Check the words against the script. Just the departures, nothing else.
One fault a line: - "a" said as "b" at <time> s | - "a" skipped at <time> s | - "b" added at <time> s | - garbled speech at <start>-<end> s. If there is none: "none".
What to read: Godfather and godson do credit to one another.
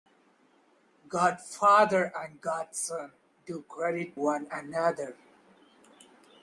- "to" skipped at 4.2 s